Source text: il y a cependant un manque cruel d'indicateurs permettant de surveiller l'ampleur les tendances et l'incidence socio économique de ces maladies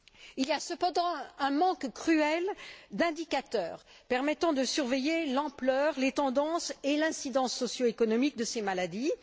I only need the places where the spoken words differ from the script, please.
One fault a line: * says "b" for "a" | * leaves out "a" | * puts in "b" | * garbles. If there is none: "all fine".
all fine